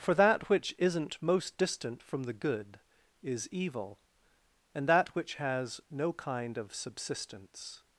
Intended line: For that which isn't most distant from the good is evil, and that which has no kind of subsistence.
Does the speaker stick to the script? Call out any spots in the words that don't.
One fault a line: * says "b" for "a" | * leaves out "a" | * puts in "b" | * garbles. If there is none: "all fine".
all fine